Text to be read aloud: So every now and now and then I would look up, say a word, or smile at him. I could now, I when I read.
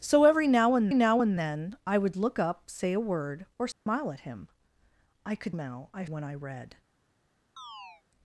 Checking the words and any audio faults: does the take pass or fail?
fail